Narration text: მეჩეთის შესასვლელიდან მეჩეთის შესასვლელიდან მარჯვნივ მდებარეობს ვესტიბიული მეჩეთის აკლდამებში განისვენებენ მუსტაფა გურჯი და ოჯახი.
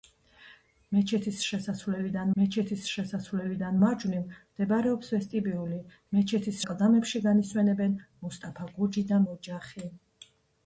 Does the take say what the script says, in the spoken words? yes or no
yes